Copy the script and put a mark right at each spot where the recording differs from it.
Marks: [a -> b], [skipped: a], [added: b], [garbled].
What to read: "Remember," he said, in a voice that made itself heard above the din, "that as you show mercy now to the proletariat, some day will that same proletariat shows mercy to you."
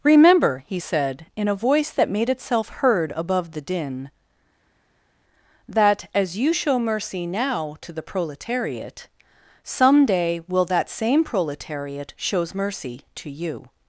"Remember," he said, in a voice that made itself heard above the din, "that as you show mercy now to the proletariat, some day will that same proletariat shows mercy to you."